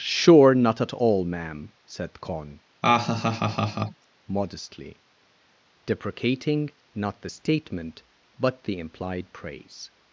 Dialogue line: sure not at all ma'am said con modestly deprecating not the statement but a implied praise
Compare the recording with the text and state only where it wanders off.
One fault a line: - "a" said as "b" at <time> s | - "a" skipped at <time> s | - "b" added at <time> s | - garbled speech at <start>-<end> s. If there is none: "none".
- "a" said as "the" at 8.6 s